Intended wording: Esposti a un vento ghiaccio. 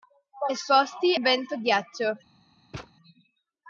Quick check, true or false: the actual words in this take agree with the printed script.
false